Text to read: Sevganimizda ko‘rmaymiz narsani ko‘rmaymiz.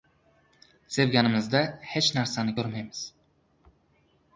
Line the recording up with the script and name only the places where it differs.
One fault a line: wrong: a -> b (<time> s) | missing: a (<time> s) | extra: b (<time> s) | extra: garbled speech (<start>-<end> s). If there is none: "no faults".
wrong: ko‘rmaymiz -> hech (1.9 s)